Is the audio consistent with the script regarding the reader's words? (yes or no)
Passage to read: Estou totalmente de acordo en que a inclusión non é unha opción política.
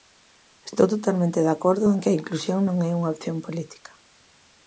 yes